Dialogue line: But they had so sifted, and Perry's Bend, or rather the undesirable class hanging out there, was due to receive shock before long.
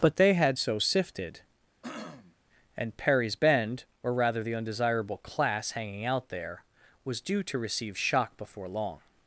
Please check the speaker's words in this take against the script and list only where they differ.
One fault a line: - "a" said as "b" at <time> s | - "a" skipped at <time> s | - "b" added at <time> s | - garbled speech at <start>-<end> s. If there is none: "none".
none